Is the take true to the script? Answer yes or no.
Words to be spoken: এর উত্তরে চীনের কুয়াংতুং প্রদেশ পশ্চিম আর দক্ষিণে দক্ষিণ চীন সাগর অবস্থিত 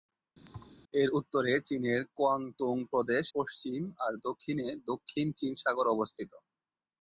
yes